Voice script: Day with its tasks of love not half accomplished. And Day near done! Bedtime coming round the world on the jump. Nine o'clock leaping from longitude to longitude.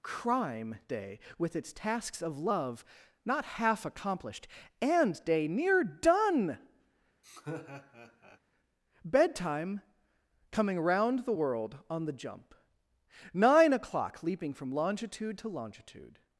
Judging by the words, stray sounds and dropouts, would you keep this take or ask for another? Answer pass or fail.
fail